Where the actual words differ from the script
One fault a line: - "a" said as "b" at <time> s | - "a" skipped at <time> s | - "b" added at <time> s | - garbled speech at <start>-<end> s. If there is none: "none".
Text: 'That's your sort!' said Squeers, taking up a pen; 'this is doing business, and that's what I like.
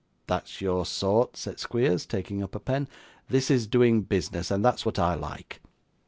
none